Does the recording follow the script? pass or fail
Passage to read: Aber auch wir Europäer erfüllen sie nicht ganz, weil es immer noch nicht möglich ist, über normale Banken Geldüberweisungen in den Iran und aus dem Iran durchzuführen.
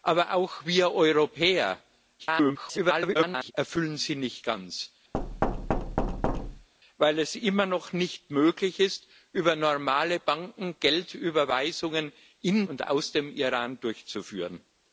fail